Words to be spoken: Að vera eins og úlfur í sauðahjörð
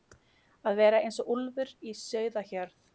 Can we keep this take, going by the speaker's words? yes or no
yes